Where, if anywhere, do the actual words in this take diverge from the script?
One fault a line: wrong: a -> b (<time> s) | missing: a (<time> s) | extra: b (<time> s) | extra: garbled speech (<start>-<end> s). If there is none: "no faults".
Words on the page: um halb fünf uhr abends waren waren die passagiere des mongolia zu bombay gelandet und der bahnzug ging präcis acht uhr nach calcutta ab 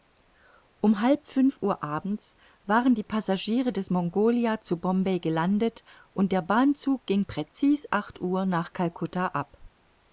missing: waren (3.0 s)